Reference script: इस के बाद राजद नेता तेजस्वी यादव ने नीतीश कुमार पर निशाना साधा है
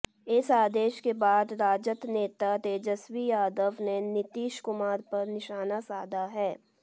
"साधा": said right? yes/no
yes